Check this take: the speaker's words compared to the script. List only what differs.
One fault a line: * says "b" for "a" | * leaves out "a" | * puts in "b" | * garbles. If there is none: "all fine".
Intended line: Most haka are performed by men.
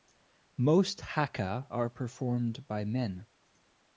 all fine